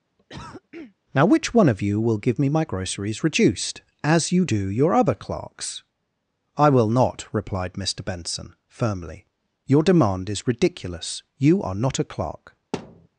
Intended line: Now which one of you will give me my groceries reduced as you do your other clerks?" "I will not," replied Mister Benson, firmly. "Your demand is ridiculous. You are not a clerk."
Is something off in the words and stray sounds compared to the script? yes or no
yes